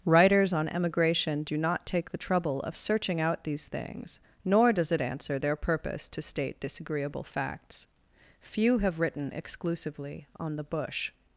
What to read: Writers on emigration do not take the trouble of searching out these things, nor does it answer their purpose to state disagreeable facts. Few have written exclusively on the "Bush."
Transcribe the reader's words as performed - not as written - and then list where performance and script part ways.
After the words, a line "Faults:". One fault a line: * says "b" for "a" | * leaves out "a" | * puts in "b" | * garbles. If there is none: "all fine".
Writers on emigration do not take the trouble of searching out these things, nor does it answer their purpose to state disagreeable facts. Few have written exclusively on the "Bush."
Faults:
all fine